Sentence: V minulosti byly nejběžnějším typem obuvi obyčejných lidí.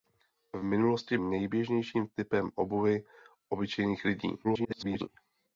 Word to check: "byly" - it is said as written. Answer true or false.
false